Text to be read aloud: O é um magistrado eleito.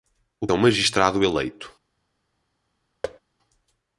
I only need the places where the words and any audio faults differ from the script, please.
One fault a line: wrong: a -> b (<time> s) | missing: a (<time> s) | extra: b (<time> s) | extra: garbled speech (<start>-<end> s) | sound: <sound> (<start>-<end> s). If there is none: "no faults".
sound: thud (3.0-3.2 s)